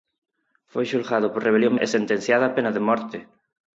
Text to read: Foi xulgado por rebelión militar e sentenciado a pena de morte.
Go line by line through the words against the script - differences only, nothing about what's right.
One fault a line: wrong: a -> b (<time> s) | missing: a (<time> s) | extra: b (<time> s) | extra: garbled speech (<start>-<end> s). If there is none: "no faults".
missing: militar (1.7 s)